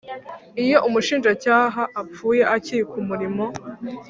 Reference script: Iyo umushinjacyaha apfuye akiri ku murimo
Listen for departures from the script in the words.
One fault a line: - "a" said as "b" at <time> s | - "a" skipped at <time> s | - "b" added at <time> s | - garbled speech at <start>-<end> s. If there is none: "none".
none